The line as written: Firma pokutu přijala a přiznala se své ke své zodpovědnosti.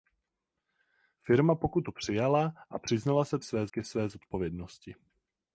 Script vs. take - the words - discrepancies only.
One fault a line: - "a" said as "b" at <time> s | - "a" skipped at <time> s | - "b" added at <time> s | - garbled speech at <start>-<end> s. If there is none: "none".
none